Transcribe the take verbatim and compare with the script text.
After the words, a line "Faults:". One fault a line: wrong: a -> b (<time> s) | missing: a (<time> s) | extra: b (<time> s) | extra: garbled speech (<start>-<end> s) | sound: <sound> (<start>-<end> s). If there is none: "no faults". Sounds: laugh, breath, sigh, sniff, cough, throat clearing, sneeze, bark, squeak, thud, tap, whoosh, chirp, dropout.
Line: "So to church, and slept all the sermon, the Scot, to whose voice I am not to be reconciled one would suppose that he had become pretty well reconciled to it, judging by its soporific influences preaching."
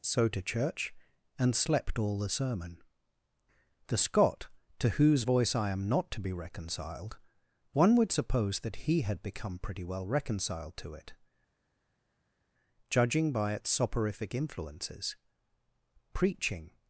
"So to church, and slept all the sermon, the Scot, to whose voice I am not to be reconciled one would suppose that he had become pretty well reconciled to it, judging by its soporific influences preaching."
Faults:
no faults